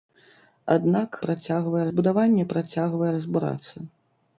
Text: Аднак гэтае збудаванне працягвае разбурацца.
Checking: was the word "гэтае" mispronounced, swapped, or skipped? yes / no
yes